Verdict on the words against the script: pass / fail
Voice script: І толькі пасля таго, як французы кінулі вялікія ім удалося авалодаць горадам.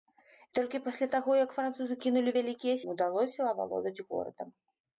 pass